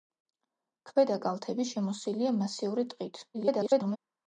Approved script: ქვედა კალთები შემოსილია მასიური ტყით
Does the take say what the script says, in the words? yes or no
no